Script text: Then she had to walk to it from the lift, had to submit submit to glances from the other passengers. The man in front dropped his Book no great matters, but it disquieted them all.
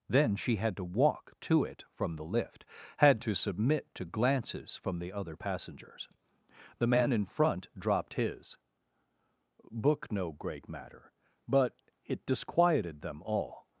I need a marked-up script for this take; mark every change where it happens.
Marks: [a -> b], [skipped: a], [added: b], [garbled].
Then she had to walk to it from the lift, had to submit [skipped: submit] to glances from the other passengers. The man in front dropped his Book no great [matters, -> matter] but it disquieted them all.